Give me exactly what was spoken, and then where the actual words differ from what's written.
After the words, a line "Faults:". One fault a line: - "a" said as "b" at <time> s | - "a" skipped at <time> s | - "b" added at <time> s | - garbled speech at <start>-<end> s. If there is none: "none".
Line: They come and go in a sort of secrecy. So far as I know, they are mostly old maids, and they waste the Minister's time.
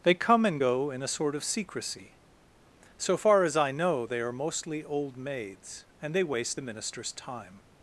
They come and go in a sort of secrecy. So far as I know, they are mostly old maids, and they waste the Minister's time.
Faults:
none